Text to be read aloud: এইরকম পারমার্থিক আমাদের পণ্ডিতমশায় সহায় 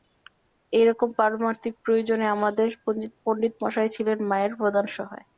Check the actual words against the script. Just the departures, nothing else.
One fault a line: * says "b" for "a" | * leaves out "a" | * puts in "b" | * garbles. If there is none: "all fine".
* puts in "প্রয়োজনে"
* puts in "ছিলেন মায়ের প্রধান"